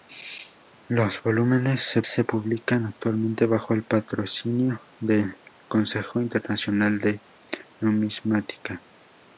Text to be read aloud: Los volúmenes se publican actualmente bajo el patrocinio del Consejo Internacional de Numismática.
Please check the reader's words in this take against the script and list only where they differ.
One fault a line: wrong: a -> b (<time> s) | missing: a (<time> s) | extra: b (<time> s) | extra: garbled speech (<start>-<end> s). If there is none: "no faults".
extra: se (2.1 s)